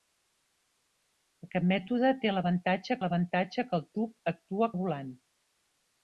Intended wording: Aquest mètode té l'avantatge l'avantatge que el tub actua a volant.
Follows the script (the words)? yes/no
yes